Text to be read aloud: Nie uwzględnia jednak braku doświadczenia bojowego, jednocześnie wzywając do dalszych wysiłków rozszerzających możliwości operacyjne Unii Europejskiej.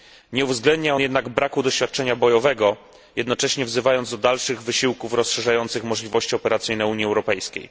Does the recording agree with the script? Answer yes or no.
yes